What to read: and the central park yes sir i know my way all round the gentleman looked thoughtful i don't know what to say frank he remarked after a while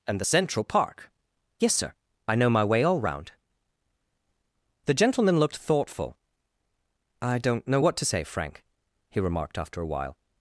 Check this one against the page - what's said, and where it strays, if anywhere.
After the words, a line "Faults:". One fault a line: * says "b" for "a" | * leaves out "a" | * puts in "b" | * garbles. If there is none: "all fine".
and the central park yes sir i know my way all round the gentleman looked thoughtful i don't know what to say frank he remarked after a while
Faults:
all fine